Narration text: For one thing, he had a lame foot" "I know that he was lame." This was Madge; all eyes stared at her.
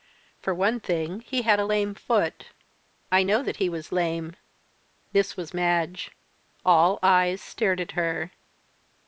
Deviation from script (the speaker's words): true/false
false